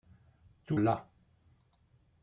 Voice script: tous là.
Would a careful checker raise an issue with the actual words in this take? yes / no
no